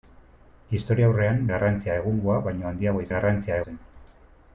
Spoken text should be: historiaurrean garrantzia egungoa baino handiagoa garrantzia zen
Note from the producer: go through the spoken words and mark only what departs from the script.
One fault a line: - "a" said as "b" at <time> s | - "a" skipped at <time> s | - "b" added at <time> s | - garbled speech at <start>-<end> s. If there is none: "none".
none